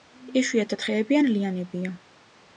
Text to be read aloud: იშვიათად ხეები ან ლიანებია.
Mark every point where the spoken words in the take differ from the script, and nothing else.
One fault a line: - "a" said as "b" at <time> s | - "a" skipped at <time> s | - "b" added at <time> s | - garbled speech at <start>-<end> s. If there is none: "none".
none